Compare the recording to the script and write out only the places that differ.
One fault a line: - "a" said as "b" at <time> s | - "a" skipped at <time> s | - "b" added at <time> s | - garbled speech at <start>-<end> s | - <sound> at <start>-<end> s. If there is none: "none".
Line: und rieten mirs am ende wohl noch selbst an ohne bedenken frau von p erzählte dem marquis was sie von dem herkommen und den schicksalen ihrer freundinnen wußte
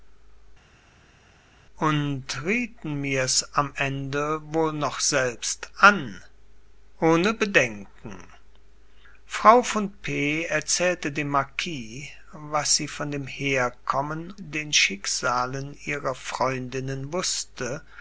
- "und" skipped at 14.4 s